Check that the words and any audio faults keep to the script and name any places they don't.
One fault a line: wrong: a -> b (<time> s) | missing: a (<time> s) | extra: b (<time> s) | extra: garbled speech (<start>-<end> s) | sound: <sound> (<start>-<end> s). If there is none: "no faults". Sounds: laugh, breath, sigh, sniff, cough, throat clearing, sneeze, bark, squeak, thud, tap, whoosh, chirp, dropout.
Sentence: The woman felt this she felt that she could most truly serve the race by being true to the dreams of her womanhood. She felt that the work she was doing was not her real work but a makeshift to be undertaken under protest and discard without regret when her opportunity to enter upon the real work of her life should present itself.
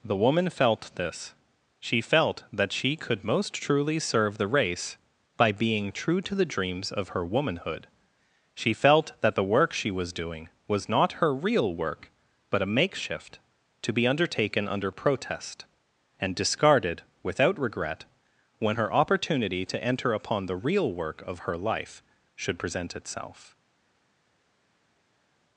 wrong: discard -> discarded (16.4 s)